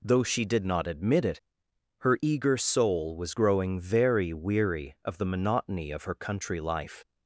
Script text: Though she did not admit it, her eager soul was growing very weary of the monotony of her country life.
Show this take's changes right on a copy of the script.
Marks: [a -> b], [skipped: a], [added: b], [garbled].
Though she did not admit it, her eager soul was growing very weary of the monotony of her country life.